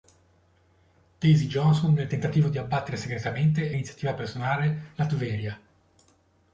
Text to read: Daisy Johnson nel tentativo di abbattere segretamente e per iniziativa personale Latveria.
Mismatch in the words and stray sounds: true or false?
true